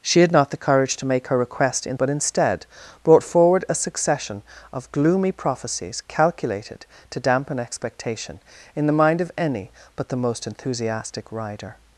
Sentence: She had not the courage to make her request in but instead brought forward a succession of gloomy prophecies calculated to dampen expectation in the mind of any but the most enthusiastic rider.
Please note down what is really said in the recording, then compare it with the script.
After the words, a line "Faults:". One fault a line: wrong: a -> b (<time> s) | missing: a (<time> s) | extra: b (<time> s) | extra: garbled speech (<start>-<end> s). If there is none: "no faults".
She had not the courage to make her request in but instead brought forward a succession of gloomy prophecies calculated to dampen expectation in the mind of any but the most enthusiastic rider.
Faults:
no faults